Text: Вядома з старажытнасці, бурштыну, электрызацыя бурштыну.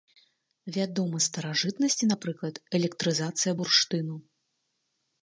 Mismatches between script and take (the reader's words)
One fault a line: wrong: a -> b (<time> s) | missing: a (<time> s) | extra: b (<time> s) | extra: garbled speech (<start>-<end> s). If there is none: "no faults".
wrong: бурштыну -> напрыклад (2.1 s)